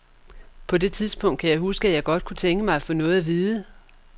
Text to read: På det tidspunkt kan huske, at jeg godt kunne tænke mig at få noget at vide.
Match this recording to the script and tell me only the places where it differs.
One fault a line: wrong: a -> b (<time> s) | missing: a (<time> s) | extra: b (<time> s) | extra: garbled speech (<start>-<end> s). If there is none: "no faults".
extra: jeg (1.5 s)